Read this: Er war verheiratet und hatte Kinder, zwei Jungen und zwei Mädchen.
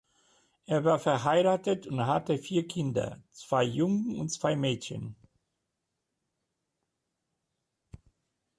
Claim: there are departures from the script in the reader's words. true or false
true